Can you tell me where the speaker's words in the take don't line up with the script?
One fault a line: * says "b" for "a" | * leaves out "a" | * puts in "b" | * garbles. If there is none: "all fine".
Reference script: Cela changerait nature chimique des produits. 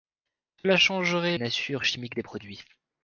all fine